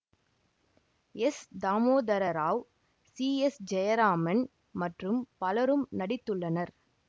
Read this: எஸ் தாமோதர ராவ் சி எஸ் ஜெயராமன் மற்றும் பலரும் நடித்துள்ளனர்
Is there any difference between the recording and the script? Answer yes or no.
no